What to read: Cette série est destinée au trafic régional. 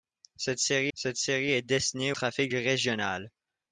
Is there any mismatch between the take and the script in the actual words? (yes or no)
yes